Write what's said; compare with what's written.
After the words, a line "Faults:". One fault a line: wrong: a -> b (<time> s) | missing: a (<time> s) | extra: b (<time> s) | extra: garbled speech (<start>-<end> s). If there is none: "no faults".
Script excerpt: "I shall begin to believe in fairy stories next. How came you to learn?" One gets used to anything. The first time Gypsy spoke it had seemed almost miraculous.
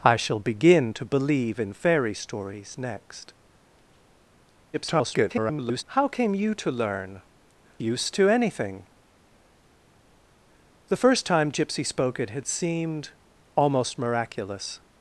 "I shall begin to believe in fairy stories next. [garbled] How came you to learn?" Used to anything. The first time Gypsy spoke it had seemed almost miraculous.
Faults:
extra: garbled speech (4.7-5.8 s)
missing: One gets (7.2 s)